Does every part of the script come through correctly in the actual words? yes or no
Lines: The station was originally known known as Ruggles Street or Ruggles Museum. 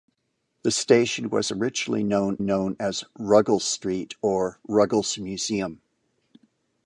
yes